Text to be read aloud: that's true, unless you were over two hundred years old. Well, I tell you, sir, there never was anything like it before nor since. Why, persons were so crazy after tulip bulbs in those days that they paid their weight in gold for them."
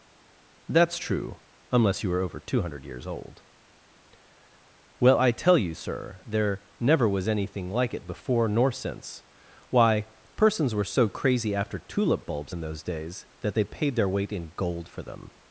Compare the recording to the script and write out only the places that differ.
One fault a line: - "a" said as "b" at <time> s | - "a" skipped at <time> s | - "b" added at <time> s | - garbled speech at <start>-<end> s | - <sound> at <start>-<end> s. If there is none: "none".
none